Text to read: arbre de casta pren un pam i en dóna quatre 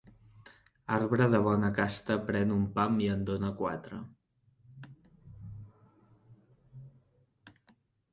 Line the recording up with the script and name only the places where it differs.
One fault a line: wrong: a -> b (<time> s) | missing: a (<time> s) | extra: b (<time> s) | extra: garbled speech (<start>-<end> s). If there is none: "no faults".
extra: bona (1.5 s)